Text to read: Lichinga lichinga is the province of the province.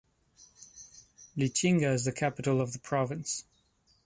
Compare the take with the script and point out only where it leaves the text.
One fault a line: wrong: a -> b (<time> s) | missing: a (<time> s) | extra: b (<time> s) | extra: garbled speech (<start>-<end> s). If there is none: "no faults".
missing: lichinga (1.9 s)
wrong: province -> capital (2.1 s)